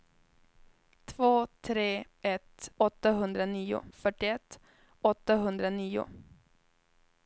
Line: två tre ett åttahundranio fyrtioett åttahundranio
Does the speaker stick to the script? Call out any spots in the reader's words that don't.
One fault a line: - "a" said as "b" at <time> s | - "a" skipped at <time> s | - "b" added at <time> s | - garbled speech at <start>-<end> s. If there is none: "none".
none